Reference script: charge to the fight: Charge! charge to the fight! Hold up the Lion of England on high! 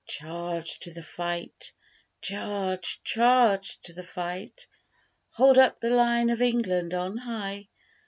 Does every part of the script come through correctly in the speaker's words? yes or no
yes